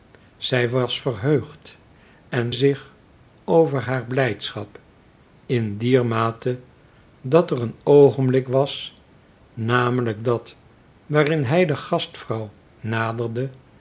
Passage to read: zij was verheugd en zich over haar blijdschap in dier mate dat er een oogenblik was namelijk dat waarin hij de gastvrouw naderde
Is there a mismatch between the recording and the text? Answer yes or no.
no